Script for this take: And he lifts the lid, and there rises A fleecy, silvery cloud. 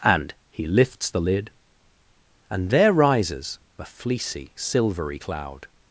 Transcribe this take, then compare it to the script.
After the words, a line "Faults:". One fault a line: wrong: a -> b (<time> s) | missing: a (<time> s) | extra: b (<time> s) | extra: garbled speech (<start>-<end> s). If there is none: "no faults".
And he lifts the lid, and there rises A fleecy, silvery cloud.
Faults:
no faults